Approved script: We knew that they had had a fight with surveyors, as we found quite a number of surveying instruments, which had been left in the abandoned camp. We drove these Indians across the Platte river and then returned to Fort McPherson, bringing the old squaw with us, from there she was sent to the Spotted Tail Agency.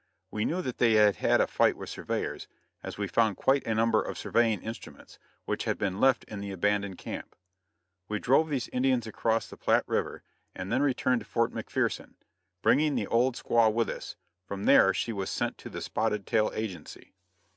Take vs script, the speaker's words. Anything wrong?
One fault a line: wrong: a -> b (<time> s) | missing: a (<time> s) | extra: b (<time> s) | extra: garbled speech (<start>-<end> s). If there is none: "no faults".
no faults